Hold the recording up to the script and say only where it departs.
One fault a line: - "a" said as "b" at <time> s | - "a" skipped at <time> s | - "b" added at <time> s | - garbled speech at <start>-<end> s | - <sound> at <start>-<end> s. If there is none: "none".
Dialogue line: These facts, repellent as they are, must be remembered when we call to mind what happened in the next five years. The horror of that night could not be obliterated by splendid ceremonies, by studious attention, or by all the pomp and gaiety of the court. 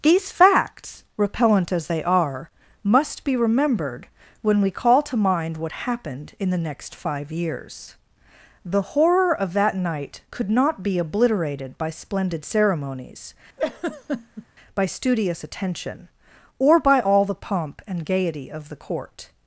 - laugh at 13.6-14.5 s